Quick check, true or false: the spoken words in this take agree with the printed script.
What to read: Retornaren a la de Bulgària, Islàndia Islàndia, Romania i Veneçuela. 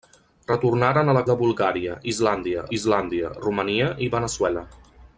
true